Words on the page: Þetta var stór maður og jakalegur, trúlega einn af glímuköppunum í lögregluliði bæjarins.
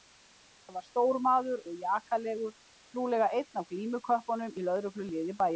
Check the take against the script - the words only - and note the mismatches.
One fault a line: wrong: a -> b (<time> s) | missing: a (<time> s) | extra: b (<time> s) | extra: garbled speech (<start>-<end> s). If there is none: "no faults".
no faults